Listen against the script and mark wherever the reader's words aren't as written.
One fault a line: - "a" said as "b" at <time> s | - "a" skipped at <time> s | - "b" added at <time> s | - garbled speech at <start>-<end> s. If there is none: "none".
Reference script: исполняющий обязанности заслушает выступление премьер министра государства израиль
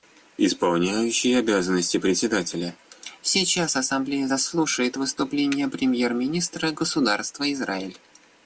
- "председателя сейчас ассамблея" added at 2.0 s